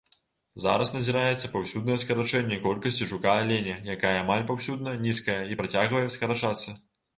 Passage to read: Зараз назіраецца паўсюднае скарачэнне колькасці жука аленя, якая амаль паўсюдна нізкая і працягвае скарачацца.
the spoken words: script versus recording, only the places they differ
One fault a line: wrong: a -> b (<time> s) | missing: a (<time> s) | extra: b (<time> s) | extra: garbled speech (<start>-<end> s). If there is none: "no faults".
no faults